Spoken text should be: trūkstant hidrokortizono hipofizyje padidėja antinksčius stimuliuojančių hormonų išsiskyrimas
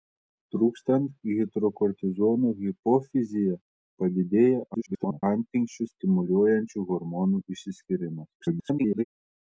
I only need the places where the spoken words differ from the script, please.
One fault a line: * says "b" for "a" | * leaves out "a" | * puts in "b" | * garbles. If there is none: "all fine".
* garbles
* garbles